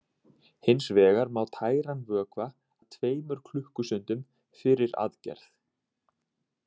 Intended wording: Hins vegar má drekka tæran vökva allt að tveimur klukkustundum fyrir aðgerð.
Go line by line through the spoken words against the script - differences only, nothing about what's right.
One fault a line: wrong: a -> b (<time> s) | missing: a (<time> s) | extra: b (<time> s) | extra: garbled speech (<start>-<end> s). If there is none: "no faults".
missing: drekka (1.4 s)
missing: allt (2.5 s)